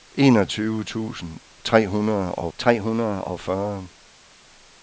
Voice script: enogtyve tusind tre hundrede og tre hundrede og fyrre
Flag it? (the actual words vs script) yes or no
no